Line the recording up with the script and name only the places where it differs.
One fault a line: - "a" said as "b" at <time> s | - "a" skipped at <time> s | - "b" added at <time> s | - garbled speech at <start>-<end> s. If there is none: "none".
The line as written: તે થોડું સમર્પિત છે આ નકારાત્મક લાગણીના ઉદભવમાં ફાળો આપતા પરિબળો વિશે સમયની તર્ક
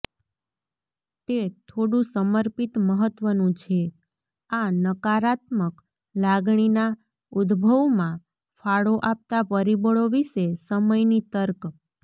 - "મહત્વનું" added at 2.9 s